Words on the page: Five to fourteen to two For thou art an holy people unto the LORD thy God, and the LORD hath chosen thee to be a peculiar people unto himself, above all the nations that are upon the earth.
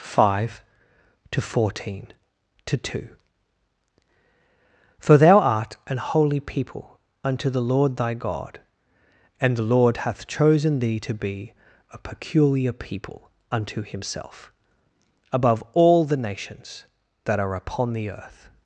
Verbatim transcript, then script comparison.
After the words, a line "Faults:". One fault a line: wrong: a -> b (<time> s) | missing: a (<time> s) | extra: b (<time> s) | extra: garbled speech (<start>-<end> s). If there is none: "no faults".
Five to fourteen to two For thou art an holy people unto the LORD thy God, and the LORD hath chosen thee to be a peculiar people unto himself, above all the nations that are upon the earth.
Faults:
no faults